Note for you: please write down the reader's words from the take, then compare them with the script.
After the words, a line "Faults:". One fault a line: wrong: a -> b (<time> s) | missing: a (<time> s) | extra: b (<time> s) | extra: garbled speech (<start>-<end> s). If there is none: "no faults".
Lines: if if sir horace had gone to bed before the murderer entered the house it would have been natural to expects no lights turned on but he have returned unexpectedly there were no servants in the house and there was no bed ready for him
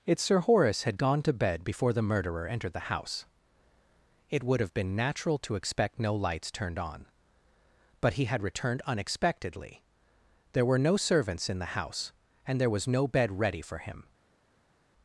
if sir horace had gone to bed before the murderer entered the house it would have been natural to expect no lights turned on but he had returned unexpectedly there were no servants in the house and there was no bed ready for him
Faults:
missing: if (0.2 s)
wrong: expects -> expect (5.5 s)
wrong: have -> had (8.2 s)